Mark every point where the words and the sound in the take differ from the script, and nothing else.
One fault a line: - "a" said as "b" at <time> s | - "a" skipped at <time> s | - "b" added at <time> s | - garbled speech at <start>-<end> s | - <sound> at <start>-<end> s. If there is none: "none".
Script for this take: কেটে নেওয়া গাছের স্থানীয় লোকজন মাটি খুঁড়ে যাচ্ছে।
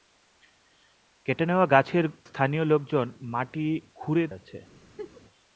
- laugh at 5.0-5.2 s